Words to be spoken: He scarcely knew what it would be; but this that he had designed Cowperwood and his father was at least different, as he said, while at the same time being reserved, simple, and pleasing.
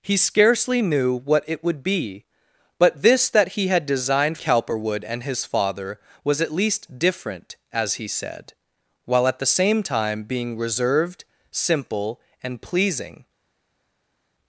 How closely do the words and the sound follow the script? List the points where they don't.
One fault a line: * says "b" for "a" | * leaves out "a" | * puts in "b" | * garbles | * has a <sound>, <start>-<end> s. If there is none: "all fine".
all fine